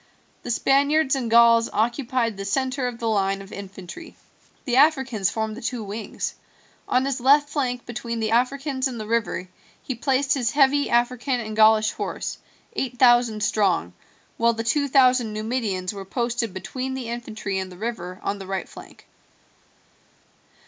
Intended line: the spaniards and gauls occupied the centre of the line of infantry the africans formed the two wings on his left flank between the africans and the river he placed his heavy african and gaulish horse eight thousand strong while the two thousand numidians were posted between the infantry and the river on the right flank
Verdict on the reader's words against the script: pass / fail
pass